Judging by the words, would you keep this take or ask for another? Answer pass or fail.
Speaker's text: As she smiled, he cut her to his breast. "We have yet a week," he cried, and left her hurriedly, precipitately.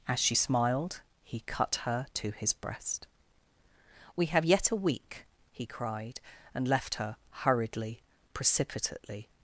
pass